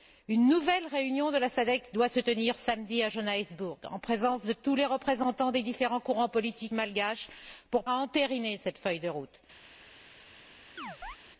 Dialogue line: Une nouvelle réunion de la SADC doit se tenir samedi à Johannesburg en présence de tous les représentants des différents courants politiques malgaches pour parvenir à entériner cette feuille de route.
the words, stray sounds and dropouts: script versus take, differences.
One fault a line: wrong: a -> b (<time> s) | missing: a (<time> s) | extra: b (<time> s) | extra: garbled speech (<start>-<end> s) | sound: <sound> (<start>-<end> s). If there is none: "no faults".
missing: parvenir (7.8 s)
sound: chirp (10.8-11.2 s)